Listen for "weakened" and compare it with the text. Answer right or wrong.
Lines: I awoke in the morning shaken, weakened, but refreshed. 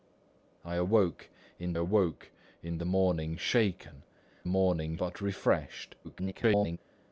wrong